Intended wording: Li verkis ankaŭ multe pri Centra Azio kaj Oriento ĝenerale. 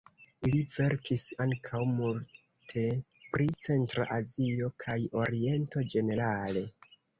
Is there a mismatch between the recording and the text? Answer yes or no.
no